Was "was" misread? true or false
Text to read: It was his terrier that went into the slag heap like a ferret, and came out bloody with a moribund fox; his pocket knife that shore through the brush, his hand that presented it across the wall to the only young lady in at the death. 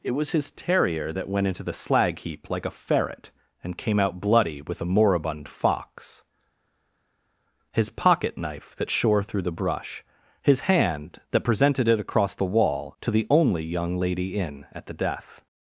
false